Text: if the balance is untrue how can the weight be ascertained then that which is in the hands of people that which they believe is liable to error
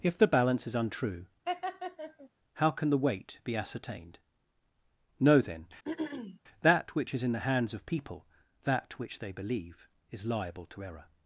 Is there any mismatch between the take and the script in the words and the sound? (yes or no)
yes